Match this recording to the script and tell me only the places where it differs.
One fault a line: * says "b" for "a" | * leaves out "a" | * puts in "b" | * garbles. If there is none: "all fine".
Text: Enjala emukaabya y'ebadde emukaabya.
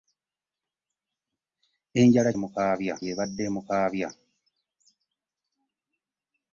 all fine